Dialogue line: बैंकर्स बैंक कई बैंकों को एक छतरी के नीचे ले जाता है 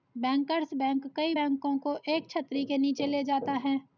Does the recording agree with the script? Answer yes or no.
yes